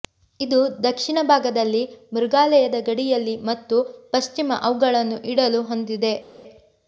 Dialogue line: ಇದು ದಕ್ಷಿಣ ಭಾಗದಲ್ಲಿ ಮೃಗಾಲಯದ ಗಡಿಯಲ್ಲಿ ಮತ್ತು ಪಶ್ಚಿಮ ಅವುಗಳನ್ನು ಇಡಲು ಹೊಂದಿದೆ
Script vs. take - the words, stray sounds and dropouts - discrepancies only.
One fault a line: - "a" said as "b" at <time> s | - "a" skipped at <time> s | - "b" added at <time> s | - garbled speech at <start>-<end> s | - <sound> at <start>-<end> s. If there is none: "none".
none